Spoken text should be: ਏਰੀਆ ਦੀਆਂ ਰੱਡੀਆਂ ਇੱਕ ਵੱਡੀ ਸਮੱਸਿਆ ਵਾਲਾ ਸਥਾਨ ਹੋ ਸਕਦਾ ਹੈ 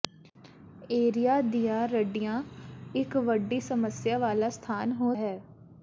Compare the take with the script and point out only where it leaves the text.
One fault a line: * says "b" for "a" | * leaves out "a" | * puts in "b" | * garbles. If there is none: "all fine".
* leaves out "ਸਕਦਾ"